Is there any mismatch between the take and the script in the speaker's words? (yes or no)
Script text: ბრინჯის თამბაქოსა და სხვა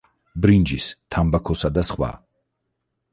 no